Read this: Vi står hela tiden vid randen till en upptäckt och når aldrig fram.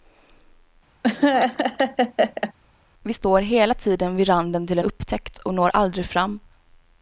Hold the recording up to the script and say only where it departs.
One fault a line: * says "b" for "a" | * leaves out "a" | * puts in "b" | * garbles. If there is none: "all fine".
* leaves out "en"